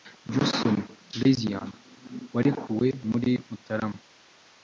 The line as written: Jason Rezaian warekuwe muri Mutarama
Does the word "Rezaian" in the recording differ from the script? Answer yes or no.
no